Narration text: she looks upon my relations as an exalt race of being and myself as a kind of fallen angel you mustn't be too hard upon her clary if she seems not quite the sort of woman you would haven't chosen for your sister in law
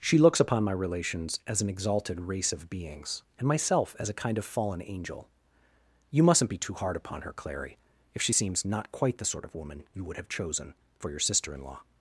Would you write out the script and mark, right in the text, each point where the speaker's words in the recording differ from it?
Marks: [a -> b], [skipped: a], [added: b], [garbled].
she looks upon my relations as an [exalt -> exalted] race of [being -> beings] and myself as a kind of fallen angel you mustn't be too hard upon her clary if she seems not quite the sort of woman you would [haven't -> have] chosen for your sister in law